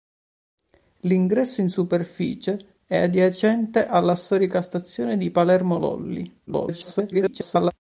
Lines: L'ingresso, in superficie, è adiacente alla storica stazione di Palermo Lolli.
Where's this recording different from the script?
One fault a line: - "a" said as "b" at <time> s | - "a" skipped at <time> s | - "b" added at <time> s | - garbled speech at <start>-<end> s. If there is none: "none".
- garbled speech at 6.5-7.7 s